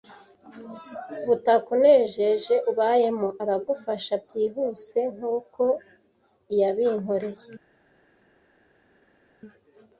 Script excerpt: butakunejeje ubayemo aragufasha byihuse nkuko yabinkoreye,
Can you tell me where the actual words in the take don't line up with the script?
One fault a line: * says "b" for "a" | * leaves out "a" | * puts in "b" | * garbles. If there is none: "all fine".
all fine